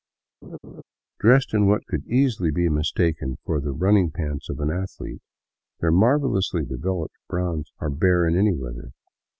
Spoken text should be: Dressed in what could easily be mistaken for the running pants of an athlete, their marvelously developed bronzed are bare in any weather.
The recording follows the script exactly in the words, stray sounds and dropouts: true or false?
false